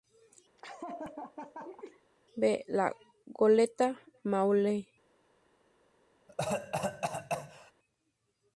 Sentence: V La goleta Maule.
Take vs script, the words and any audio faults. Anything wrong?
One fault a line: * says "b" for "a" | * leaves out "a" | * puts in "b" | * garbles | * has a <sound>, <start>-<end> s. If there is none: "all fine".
* has a laugh, 0.6-2.0 s
* has a cough, 6.3-7.7 s